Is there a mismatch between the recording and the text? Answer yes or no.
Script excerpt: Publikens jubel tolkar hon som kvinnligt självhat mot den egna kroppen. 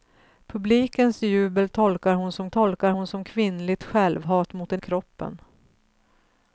yes